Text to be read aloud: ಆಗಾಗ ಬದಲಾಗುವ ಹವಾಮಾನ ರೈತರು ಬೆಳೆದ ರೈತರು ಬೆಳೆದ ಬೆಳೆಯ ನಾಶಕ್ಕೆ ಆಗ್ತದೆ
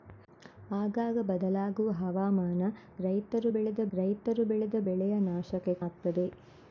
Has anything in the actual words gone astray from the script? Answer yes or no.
no